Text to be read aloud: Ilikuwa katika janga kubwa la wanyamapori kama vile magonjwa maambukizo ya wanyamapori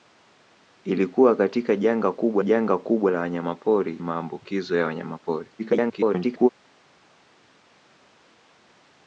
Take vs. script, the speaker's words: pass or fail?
fail